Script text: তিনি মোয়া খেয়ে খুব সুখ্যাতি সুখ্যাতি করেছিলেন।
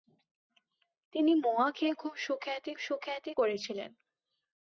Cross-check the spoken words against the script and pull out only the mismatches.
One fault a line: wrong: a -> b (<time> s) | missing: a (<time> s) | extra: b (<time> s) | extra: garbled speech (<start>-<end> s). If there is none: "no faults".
no faults